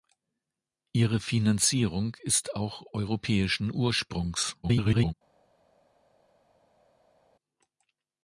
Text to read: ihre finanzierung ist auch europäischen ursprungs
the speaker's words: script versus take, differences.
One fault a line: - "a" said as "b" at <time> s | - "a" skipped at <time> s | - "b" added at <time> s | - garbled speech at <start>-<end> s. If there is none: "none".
- garbled speech at 4.6-5.1 s